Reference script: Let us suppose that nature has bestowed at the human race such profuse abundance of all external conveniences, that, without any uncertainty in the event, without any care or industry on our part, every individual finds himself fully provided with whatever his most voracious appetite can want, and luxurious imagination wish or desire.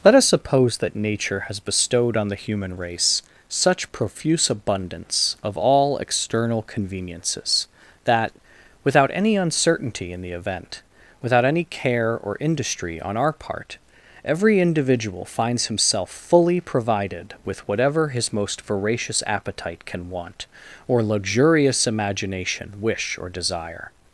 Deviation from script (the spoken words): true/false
true